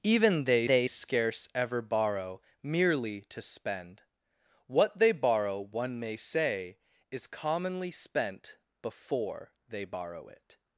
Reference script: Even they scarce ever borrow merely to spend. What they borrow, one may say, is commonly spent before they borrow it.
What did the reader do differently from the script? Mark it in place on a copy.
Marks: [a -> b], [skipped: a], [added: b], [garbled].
Even they [added: they] scarce ever borrow merely to spend. What they borrow, one may say, is commonly spent before they borrow it.